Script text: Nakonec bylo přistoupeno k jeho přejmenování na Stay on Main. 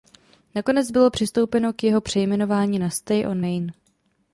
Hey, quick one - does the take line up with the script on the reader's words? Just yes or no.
yes